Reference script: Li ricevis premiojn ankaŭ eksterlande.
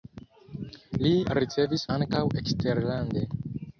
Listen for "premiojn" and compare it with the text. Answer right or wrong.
wrong